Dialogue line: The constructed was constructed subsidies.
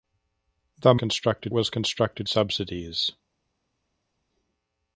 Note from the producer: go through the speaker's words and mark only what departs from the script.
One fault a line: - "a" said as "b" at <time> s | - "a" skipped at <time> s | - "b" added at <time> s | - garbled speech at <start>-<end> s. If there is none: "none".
none